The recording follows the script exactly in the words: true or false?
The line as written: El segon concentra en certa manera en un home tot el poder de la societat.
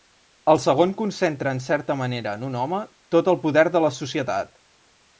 true